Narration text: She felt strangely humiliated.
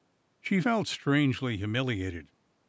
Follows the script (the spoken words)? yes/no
yes